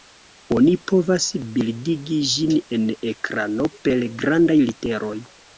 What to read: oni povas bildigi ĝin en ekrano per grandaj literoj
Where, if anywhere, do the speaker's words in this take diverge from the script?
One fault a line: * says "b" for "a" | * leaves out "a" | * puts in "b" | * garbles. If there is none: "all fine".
all fine